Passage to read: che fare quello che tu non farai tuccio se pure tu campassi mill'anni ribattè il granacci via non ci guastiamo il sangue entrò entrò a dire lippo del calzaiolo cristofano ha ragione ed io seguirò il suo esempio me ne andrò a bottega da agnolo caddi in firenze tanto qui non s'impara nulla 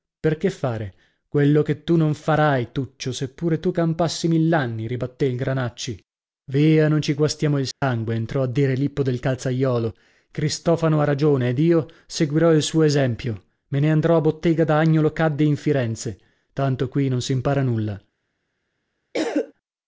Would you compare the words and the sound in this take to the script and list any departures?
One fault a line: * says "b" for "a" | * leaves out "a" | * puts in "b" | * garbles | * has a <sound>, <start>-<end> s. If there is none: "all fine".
* has a dropout, 7.7-7.8 s
* leaves out "entrò"
* has a cough, 19.1-19.5 s